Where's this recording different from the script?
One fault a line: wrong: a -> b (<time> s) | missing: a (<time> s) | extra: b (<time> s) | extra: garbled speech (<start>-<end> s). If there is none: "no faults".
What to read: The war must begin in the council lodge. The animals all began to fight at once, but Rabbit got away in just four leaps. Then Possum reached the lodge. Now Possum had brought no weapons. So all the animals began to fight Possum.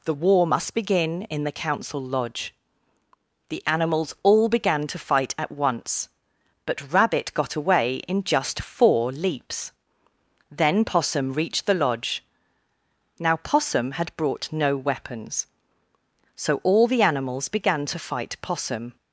no faults